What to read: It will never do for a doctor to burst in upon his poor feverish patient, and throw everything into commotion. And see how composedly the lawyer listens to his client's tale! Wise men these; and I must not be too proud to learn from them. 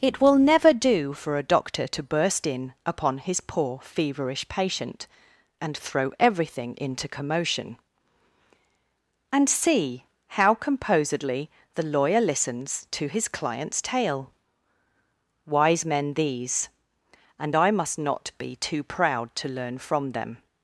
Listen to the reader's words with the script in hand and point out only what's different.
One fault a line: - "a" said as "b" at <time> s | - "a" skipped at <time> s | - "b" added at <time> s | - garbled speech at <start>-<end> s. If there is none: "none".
none